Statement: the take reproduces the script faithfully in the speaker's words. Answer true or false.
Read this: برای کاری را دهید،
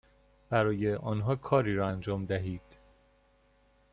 false